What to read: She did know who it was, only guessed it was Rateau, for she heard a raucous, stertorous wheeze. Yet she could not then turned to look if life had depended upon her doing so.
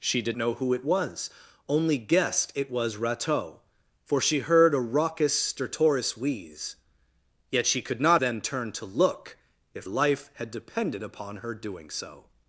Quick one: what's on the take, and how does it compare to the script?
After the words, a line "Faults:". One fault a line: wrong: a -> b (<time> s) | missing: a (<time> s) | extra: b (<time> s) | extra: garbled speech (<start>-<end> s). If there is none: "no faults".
She did know who it was, only guessed it was Rateau, for she heard a raucous, stertorous wheeze. Yet she could not then turned to look if life had depended upon her doing so.
Faults:
no faults